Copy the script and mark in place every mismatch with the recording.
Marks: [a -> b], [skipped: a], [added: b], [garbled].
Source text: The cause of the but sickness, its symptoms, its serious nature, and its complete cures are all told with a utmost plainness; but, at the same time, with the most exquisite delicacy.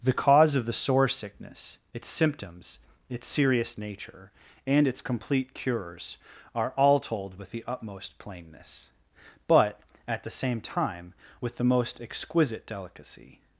The cause of the [but -> sore] sickness, its symptoms, its serious nature, and its complete cures are all told with [a -> the] utmost plainness; but, at the same time, with the most exquisite delicacy.